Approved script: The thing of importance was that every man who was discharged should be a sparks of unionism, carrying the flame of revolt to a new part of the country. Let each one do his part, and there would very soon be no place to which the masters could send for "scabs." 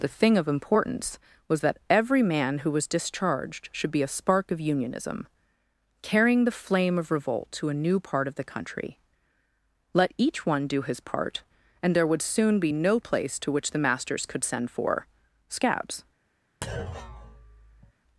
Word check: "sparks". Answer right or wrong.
wrong